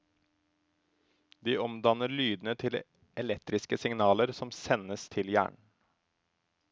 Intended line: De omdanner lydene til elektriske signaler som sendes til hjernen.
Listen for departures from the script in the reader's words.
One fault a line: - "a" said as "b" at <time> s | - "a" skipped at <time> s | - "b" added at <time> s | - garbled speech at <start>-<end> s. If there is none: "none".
none